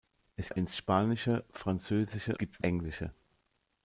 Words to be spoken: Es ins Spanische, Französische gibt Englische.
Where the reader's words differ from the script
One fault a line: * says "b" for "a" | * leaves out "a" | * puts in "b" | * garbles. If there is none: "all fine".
all fine